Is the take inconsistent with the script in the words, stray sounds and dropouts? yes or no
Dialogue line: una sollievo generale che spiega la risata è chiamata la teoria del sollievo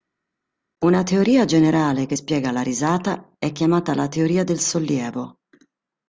yes